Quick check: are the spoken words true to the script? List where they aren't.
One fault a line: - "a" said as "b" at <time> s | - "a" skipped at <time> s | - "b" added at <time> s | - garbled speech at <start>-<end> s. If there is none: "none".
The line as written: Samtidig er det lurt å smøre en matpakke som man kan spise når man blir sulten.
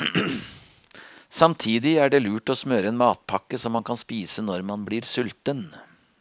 none